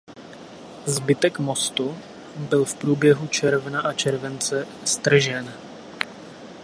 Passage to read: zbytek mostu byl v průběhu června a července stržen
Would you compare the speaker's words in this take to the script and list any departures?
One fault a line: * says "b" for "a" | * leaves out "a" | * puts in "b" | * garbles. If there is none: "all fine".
all fine